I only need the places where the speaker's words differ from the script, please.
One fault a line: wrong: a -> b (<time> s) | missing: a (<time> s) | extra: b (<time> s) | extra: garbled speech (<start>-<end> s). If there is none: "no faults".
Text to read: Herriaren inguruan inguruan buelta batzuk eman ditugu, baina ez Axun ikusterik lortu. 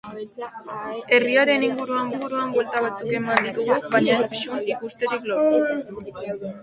no faults